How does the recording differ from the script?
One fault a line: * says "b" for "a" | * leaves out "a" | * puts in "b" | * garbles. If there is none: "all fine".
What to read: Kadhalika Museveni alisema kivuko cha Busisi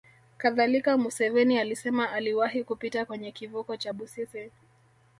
* puts in "aliwahi kupita kwenye"